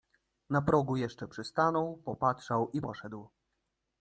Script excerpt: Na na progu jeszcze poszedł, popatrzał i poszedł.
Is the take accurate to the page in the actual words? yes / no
no